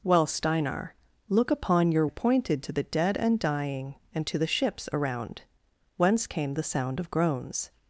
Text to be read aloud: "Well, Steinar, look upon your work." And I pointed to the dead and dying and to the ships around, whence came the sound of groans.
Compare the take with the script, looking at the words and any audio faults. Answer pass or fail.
fail